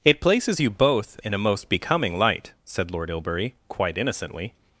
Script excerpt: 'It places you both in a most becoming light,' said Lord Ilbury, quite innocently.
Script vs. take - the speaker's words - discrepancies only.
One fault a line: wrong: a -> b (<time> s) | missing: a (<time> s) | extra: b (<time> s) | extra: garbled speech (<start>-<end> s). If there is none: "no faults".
no faults